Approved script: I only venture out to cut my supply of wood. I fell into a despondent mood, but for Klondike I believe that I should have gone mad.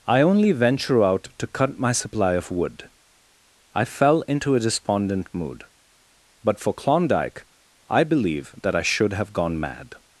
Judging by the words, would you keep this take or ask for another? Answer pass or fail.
pass